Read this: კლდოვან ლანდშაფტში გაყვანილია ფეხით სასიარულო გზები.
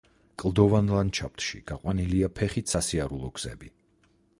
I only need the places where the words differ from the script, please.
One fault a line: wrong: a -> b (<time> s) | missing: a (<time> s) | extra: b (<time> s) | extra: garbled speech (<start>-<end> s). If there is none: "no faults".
no faults